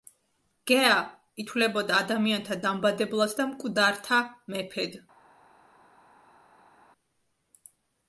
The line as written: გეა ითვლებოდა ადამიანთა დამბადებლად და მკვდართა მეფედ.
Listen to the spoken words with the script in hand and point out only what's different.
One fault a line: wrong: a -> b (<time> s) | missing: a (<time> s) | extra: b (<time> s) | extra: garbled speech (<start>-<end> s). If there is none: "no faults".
no faults